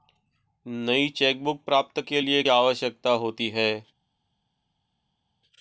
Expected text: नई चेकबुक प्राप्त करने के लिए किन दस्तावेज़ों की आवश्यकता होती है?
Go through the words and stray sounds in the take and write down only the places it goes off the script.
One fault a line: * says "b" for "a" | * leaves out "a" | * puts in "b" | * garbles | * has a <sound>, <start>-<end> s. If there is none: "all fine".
* leaves out "करने"
* leaves out "किन दस्तावेज़ों की"